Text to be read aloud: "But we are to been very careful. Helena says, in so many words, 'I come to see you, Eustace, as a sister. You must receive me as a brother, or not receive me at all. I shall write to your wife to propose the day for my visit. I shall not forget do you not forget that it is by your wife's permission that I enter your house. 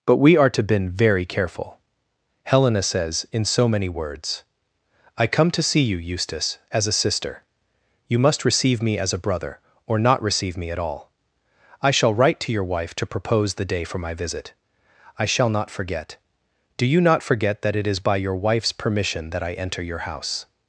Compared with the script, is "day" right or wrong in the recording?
right